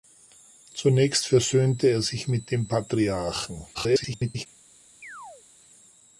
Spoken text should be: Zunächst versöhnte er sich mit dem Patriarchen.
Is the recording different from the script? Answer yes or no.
yes